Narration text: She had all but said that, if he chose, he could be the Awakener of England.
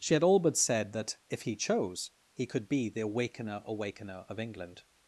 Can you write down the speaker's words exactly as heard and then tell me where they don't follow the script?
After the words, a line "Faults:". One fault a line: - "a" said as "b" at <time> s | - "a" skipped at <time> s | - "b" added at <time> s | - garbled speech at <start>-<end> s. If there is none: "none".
She had all but said that, if he chose, he could be the Awakener Awakener of England.
Faults:
- "Awakener" added at 3.6 s